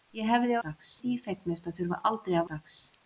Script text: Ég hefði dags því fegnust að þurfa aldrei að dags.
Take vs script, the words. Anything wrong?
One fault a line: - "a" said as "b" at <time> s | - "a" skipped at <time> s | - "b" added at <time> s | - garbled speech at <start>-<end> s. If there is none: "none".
none